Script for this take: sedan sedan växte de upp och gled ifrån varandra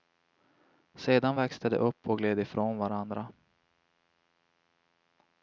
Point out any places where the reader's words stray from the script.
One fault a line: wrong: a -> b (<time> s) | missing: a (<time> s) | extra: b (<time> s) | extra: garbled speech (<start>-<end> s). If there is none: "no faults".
missing: sedan (1.4 s)